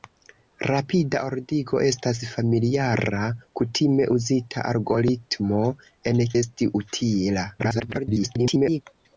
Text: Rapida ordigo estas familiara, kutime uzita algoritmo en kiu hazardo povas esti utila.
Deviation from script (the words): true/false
true